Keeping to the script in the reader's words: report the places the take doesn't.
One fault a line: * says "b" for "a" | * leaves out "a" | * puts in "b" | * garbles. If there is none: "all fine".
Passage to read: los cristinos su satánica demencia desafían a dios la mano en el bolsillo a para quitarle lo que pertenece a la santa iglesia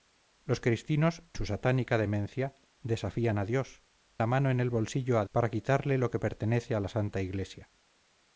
all fine